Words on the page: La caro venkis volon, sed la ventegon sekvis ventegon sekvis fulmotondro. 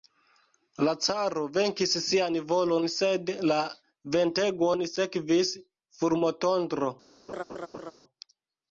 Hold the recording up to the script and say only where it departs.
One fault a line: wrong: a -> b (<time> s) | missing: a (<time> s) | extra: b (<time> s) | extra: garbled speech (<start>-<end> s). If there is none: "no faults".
extra: sian (2.0 s)
missing: ventegon sekvis (5.5 s)